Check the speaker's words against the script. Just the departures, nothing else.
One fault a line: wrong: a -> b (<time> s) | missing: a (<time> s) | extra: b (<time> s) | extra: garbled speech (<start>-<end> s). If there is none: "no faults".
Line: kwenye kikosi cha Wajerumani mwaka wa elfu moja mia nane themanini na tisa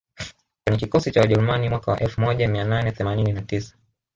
no faults